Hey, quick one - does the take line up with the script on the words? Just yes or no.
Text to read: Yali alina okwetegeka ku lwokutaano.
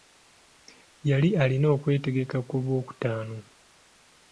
yes